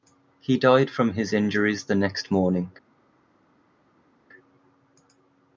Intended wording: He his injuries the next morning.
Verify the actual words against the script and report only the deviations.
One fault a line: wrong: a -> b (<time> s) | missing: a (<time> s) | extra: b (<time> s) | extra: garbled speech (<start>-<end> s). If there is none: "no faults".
extra: died from (0.6 s)